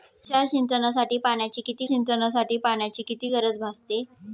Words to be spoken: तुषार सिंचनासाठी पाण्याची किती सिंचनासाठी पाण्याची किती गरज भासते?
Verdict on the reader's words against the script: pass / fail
pass